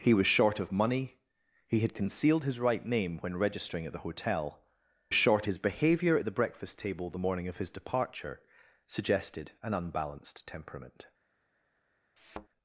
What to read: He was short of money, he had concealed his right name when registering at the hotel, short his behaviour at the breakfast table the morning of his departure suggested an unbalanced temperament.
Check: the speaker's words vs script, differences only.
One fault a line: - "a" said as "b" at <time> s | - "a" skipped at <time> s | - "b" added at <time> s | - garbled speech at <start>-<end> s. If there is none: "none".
none